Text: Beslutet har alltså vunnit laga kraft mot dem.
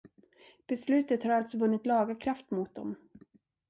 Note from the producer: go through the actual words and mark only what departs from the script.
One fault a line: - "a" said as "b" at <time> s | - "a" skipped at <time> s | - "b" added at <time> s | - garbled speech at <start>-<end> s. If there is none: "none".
none